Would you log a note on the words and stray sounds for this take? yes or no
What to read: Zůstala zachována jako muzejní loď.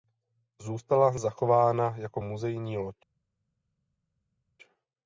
no